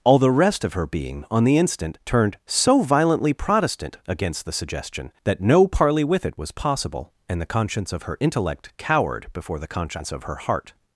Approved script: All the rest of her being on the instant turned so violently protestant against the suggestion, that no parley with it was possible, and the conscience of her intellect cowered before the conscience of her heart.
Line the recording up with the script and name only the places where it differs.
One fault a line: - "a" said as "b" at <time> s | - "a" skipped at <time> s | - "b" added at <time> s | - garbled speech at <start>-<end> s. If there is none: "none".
none